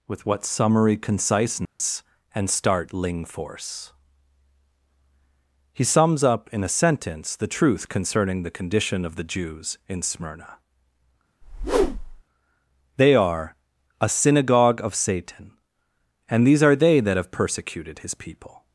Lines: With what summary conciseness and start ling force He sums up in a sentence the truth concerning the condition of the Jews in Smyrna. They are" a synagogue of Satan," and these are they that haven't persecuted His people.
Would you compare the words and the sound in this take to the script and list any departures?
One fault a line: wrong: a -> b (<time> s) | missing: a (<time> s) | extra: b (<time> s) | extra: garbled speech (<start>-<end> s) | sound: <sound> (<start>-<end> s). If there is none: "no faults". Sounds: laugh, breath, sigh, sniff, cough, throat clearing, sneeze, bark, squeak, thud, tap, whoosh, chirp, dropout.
sound: dropout (1.7-1.8 s)
sound: whoosh (11.4-12.2 s)
wrong: haven't -> have (17.2 s)